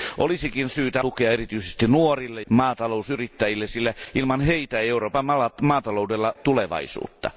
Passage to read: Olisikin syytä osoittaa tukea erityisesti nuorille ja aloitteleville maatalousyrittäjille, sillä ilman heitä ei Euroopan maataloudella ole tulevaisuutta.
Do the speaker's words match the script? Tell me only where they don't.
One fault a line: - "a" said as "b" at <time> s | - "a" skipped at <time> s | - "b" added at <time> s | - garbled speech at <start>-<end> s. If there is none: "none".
- "osoittaa" skipped at 1.0 s
- "ja aloitteleville" skipped at 2.4 s
- "ole" skipped at 6.3 s